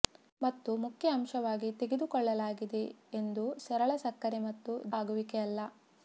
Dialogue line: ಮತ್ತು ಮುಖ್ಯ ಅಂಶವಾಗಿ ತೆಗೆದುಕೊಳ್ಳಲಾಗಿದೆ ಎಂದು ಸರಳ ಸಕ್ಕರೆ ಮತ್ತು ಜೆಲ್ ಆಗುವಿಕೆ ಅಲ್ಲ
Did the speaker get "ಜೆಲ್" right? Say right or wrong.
wrong